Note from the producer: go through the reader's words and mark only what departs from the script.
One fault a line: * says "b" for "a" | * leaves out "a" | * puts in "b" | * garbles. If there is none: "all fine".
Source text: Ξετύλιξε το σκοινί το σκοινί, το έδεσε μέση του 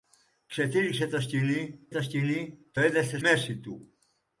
all fine